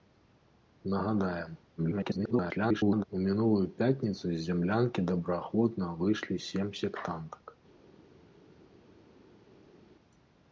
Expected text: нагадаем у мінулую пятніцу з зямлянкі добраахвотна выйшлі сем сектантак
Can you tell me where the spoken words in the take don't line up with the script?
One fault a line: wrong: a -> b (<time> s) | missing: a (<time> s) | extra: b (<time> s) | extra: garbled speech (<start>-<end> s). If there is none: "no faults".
extra: garbled speech (1.8-3.0 s)